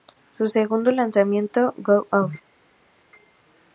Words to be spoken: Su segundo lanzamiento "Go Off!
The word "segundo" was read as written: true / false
true